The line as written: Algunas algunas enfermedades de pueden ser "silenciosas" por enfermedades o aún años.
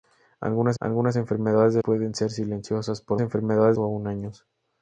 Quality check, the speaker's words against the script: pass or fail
pass